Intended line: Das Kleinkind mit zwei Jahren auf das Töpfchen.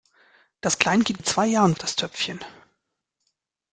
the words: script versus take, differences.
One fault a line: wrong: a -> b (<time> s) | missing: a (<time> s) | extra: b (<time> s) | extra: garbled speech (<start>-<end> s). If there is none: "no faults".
no faults